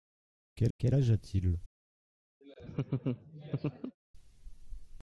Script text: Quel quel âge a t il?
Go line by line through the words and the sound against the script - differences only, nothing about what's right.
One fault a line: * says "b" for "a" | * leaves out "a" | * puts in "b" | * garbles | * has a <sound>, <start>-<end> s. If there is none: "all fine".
* has a laugh, 2.4-4.0 s